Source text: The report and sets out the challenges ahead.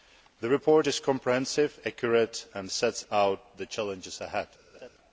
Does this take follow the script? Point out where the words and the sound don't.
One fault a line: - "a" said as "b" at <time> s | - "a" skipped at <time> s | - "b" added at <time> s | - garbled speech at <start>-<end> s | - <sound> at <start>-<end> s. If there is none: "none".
- "is comprehensive accurate" added at 0.9 s
- laugh at 4.7-4.9 s